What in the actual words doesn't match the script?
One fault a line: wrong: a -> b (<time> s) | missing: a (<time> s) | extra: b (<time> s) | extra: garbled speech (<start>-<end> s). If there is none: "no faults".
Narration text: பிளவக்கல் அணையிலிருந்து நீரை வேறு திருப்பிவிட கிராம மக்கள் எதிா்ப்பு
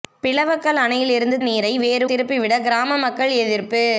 no faults